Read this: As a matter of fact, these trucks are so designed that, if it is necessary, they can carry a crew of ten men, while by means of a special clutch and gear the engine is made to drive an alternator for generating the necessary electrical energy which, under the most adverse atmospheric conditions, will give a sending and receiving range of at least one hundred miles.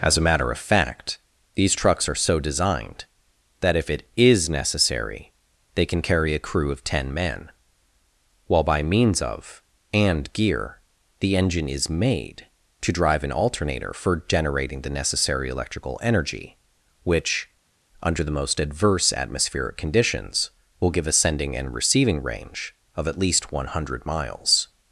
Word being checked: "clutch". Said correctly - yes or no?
no